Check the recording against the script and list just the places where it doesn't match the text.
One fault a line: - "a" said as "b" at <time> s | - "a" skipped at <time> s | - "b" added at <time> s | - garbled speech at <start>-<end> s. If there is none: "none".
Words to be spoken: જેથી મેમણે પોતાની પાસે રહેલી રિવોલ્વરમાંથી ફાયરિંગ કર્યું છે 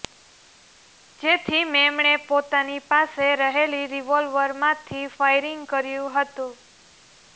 - "છે" said as "હતું" at 6.2 s